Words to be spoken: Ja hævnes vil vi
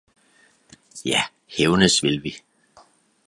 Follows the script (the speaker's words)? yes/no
yes